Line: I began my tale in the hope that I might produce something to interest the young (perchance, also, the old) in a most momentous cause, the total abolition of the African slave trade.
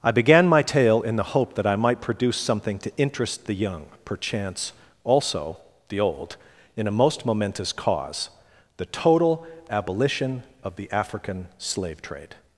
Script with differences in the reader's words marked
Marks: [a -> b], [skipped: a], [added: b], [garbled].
I began my tale in the hope that I might produce something to interest the young (perchance, also, the old) in a most momentous cause, the total abolition of the African slave trade.